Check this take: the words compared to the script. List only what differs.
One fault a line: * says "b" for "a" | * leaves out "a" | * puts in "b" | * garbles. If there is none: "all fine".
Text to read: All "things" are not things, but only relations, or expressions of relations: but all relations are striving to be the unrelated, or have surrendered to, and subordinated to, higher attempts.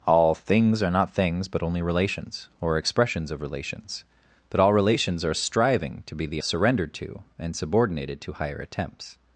* leaves out "unrelated or have"